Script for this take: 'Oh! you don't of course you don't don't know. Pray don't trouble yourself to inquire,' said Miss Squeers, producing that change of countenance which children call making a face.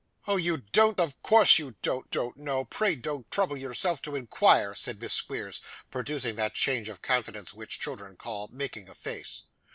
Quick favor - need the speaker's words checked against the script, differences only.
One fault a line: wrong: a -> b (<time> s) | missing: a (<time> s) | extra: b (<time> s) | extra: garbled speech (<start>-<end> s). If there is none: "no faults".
no faults